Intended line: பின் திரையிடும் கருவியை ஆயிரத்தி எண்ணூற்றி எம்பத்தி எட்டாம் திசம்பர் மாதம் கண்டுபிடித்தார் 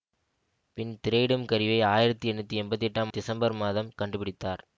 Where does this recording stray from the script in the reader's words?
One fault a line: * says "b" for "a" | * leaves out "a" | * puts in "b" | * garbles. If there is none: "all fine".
all fine